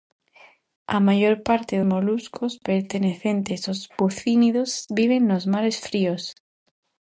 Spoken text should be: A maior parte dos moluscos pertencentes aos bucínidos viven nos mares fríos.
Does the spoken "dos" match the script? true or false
false